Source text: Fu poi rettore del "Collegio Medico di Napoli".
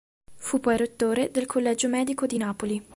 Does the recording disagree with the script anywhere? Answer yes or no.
no